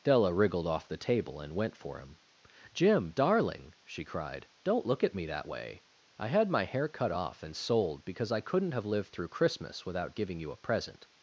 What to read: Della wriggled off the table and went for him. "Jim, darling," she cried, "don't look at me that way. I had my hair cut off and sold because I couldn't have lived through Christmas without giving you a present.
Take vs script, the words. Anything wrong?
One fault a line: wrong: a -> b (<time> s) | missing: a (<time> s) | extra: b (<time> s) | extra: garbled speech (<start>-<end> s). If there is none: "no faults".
no faults